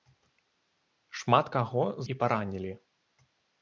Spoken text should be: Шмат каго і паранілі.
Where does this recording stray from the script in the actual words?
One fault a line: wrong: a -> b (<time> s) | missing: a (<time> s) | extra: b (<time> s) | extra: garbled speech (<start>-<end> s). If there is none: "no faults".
no faults